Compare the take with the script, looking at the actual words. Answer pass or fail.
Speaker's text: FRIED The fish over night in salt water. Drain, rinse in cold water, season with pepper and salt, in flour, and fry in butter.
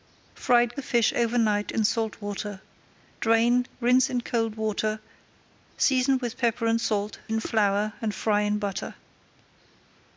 pass